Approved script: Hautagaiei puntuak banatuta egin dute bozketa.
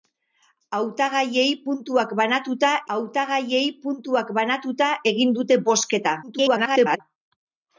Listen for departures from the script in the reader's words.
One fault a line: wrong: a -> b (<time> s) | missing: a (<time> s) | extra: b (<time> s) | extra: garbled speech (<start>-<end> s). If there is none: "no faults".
extra: hautagaiei puntuak banatuta (2.9 s)
extra: garbled speech (6.2-7.0 s)